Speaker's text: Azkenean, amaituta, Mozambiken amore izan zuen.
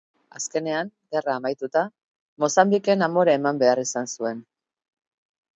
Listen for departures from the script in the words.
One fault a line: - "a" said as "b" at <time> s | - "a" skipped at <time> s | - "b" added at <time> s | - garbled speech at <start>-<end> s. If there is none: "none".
- "gerra" added at 1.1 s
- "eman behar" added at 3.4 s